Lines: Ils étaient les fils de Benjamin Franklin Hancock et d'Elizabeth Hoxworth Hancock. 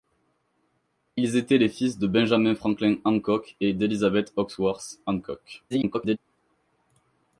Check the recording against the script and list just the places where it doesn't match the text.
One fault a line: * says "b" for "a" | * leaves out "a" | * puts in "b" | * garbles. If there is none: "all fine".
* garbles